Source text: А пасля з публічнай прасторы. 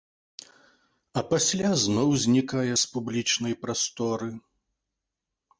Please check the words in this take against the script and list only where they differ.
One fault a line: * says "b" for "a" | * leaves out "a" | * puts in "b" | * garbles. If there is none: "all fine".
* puts in "зноў знікае"